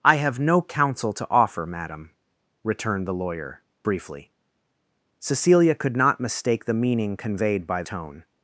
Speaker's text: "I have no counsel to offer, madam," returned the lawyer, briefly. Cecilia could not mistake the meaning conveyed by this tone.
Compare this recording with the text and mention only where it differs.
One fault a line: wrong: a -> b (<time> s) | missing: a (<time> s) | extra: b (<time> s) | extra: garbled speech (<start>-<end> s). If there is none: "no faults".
missing: this (7.8 s)